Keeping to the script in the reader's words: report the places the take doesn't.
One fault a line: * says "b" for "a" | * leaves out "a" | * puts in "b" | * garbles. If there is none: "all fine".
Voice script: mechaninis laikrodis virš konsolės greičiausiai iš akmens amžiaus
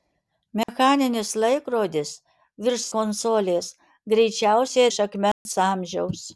all fine